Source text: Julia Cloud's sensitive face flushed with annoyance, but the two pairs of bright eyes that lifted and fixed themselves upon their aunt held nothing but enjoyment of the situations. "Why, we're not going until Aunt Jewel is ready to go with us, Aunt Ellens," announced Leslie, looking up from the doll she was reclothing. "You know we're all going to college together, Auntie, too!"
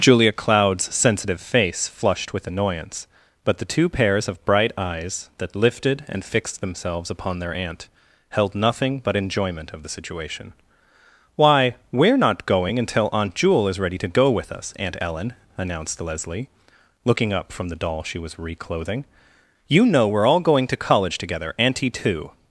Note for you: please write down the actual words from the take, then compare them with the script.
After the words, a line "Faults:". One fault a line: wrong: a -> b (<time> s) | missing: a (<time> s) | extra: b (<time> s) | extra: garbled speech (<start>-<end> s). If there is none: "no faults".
Julia Cloud's sensitive face flushed with annoyance, but the two pairs of bright eyes that lifted and fixed themselves upon their aunt held nothing but enjoyment of the situation. "Why, we're not going until Aunt Jewel is ready to go with us, Aunt Ellen," announced Leslie, looking up from the doll she was reclothing. "You know we're all going to college together, Auntie, too!"
Faults:
wrong: situations -> situation (9.9 s)
wrong: Ellens -> Ellen (15.0 s)